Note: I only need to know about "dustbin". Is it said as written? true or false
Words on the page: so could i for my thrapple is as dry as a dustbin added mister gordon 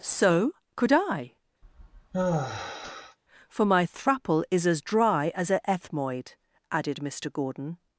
false